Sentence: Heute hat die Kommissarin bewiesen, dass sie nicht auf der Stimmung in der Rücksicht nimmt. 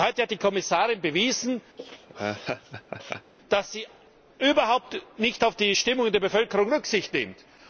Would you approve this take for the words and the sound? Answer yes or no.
no